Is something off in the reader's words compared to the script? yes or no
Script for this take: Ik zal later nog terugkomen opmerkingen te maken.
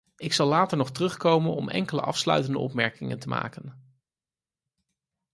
yes